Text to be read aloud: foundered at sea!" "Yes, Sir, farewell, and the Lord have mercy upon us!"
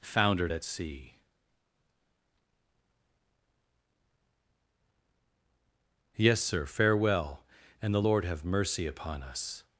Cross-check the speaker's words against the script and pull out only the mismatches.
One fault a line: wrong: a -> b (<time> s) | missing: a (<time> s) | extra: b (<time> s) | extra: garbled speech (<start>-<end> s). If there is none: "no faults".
no faults